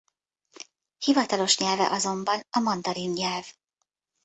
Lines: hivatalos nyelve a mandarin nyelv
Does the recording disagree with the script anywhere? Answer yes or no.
yes